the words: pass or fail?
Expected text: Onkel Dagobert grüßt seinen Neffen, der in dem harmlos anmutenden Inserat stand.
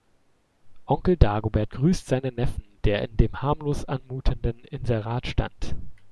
pass